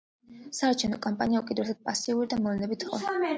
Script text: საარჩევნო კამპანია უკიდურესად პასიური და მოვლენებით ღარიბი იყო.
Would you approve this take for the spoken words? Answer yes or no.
no